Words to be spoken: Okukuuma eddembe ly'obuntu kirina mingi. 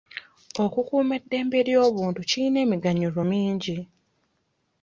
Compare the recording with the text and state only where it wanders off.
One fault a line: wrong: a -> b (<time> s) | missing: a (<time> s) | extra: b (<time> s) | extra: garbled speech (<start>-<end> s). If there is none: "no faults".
extra: emiganyulo (2.6 s)